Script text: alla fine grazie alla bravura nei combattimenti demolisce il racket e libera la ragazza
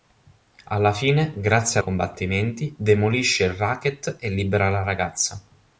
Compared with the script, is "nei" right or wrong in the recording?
wrong